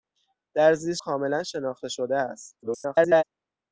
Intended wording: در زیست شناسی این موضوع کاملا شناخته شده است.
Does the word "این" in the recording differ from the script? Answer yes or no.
yes